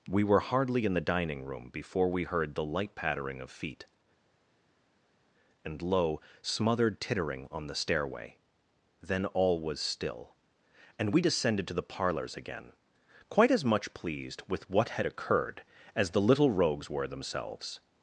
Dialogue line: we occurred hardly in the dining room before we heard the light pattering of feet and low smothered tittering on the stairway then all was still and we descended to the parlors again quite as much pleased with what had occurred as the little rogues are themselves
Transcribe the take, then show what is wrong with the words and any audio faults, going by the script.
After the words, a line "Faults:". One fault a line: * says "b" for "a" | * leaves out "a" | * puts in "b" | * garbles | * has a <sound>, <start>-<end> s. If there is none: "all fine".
we were hardly in the dining room before we heard the light pattering of feet and low smothered tittering on the stairway then all was still and we descended to the parlors again quite as much pleased with what had occurred as the little rogues were themselves
Faults:
* says "were" for "occurred"
* says "were" for "are"